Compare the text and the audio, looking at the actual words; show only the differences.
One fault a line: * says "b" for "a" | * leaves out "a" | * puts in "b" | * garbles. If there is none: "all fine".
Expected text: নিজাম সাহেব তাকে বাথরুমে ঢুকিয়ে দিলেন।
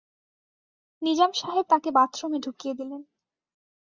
all fine